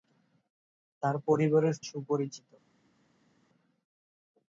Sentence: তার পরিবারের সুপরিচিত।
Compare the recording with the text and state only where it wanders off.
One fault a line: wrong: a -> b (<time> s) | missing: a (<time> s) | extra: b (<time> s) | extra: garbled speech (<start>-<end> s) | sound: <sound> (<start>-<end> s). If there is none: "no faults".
no faults